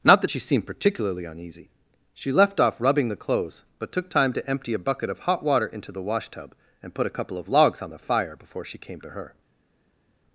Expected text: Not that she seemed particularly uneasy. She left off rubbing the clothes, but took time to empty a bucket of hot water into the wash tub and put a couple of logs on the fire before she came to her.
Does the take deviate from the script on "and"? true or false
false